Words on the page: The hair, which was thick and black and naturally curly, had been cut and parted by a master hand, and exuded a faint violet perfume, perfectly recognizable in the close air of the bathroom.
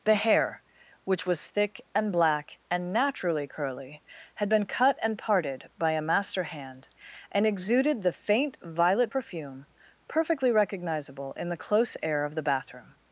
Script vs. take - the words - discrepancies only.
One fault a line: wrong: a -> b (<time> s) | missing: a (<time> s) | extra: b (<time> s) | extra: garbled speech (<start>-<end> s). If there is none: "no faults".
wrong: a -> the (8.0 s)